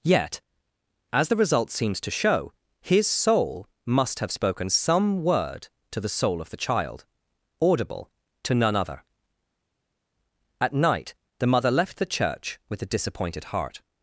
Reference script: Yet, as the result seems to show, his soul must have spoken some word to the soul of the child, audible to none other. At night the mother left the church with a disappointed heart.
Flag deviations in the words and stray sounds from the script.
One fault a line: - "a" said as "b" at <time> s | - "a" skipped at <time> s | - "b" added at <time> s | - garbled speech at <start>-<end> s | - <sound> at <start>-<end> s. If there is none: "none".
none